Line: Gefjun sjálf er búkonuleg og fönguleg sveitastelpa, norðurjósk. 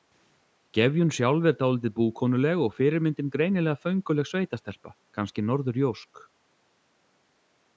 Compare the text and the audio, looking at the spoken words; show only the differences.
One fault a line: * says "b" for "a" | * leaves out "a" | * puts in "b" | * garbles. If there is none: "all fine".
* puts in "dálítið"
* puts in "fyrirmyndin greinilega"
* puts in "kannski"